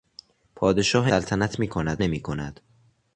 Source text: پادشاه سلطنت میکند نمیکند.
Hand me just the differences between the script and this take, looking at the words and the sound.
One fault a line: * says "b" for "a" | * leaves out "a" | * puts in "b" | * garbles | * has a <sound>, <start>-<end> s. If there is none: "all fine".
all fine